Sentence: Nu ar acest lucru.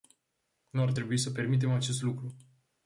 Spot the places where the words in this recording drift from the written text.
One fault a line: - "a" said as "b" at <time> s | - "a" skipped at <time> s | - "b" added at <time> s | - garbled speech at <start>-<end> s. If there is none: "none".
- "trebui să permitem" added at 0.9 s